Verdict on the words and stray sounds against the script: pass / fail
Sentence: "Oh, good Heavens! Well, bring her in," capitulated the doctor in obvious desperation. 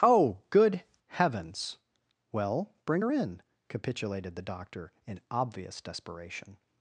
pass